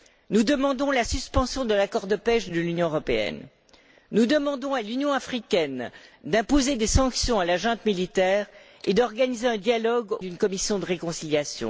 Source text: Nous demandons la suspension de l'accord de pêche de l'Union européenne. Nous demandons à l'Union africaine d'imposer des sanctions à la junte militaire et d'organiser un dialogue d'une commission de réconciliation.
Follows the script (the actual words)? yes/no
yes